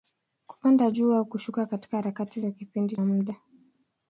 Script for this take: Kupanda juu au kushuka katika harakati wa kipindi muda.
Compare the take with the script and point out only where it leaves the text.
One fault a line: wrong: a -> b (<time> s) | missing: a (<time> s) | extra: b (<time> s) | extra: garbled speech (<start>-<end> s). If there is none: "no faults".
no faults